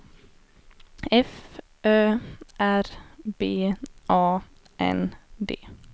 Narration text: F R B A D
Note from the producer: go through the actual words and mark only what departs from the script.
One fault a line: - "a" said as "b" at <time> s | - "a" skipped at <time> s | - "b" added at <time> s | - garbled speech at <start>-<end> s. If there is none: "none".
- "Ö" added at 1.9 s
- "N" added at 4.8 s